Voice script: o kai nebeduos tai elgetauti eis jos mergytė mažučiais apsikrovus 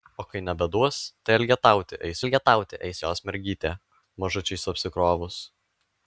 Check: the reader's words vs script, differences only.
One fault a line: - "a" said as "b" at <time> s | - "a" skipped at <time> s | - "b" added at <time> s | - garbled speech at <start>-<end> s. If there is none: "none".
- "elgetauti eis" added at 2.2 s